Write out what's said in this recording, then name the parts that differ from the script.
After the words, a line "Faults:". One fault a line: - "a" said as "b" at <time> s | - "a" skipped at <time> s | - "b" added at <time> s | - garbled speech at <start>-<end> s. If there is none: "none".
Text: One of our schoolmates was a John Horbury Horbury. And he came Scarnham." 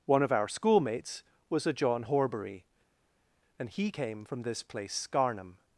One of our schoolmates was a John Horbury. And he came from this place Scarnham."
Faults:
- "Horbury" skipped at 2.7 s
- "from this place" added at 4.2 s